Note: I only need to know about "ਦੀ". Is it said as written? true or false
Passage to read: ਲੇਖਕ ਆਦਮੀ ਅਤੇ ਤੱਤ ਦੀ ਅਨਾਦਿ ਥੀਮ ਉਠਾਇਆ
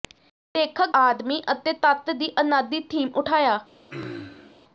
true